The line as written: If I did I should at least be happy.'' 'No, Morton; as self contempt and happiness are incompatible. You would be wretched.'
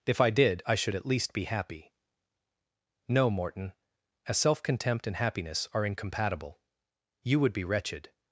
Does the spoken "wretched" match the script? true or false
true